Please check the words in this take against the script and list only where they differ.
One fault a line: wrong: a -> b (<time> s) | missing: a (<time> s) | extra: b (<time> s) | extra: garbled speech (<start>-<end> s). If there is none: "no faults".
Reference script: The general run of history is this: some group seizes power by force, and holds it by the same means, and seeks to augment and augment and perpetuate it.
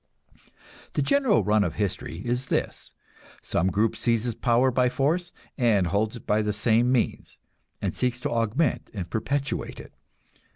missing: augment and (9.1 s)